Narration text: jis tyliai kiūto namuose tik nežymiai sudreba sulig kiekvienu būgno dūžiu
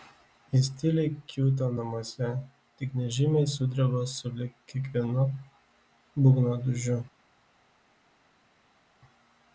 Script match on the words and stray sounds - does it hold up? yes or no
yes